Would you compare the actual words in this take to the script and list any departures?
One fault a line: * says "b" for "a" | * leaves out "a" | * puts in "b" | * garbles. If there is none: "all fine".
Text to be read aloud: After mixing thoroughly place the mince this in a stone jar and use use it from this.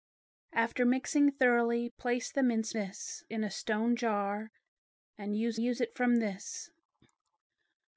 all fine